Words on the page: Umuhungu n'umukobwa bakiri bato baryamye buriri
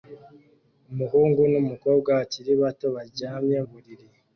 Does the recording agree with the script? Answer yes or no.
yes